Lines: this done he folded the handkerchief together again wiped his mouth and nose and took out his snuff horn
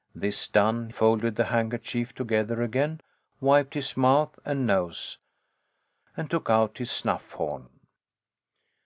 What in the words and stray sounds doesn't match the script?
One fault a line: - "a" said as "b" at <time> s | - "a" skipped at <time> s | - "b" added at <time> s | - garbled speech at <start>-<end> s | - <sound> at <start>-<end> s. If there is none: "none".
- "he" skipped at 0.9 s